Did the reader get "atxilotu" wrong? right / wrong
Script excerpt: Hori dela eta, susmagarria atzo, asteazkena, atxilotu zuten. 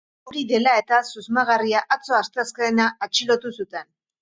right